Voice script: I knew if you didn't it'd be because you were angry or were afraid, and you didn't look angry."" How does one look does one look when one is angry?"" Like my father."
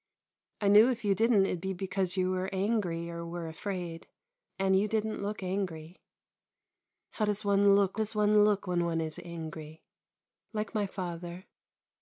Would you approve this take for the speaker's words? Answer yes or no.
yes